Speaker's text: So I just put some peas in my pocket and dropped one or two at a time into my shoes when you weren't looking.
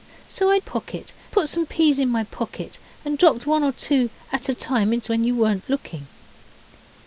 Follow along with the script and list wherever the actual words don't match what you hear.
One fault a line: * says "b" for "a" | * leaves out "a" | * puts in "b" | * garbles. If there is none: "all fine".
* says "pocket" for "just"
* leaves out "my shoes"